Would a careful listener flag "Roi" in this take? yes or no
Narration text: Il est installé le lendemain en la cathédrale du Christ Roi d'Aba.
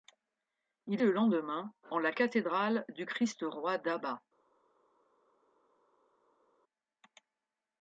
no